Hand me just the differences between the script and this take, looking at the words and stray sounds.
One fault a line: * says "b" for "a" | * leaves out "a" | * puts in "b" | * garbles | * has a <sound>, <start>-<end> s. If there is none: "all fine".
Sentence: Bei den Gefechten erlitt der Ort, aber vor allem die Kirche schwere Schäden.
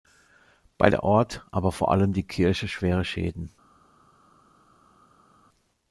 * leaves out "den Gefechten erlitt"